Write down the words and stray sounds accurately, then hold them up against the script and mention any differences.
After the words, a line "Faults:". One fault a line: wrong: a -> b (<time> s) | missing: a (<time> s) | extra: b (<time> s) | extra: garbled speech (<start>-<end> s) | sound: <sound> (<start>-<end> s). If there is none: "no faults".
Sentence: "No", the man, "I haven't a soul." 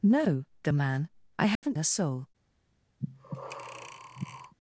"No", the man, "I haven't a soul."
Faults:
sound: dropout (1.6-1.6 s)
sound: breath (3.0-4.5 s)